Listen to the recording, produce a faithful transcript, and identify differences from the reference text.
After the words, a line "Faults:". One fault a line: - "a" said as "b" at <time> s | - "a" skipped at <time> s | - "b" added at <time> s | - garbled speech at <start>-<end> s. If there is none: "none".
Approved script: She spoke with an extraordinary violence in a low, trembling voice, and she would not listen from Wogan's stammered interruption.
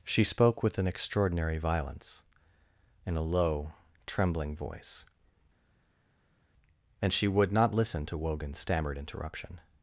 She spoke with an extraordinary violence in a low, trembling voice, and she would not listen to Wogan's stammered interruption.
Faults:
- "from" said as "to" at 8.1 s